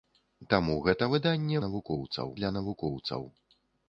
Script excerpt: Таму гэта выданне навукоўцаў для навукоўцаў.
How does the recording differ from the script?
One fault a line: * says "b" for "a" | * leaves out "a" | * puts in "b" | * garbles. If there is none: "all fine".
all fine